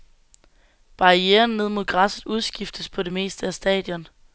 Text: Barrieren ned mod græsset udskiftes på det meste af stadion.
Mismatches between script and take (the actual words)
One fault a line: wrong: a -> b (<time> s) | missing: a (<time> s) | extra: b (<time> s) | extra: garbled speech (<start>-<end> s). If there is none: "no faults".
no faults